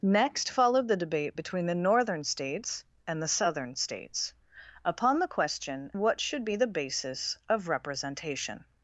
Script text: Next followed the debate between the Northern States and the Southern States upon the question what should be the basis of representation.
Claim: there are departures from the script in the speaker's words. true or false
false